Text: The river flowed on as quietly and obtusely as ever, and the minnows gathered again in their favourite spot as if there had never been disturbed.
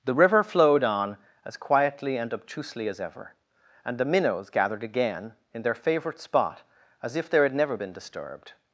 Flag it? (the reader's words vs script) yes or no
no